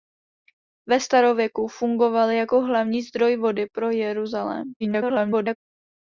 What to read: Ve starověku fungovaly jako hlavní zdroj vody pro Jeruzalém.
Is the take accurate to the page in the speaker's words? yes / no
no